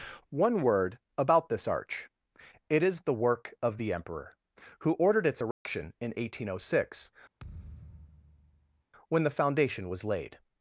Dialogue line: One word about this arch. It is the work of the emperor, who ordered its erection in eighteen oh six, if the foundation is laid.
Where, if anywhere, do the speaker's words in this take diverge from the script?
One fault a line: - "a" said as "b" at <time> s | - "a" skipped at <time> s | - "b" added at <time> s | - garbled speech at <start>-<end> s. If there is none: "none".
- "if" said as "when" at 9.1 s
- "is" said as "was" at 9.9 s